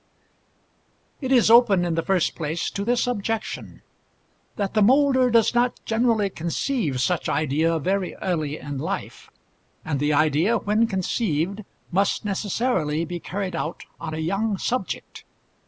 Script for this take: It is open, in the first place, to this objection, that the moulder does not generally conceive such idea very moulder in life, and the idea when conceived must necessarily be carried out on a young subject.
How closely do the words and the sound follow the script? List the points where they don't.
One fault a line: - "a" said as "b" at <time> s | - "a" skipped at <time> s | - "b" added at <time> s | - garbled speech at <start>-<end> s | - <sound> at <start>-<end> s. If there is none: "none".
- "moulder" said as "early" at 8.2 s